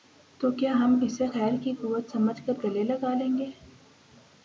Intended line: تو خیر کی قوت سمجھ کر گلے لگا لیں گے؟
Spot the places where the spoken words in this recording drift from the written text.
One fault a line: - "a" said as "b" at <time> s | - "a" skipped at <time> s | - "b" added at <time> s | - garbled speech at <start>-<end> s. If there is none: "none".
- "کیا ہم اسے" added at 0.5 s